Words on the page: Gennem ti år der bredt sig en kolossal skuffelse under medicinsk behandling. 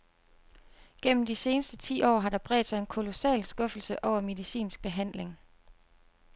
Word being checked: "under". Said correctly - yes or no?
no